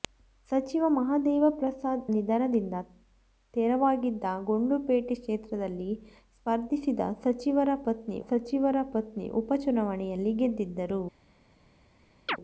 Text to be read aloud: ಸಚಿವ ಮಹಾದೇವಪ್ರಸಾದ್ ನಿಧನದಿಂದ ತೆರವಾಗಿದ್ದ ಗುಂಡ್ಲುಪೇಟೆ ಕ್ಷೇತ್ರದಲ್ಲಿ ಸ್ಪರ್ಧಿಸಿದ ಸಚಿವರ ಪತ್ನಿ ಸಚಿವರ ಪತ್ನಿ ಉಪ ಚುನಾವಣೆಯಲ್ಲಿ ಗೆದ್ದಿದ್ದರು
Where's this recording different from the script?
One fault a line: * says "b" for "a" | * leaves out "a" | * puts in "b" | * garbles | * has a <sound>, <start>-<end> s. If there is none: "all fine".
* has a chirp, 12.3-12.4 s